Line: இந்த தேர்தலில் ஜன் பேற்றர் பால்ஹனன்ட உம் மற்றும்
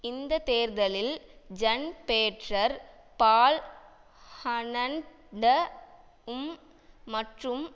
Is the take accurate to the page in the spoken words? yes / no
yes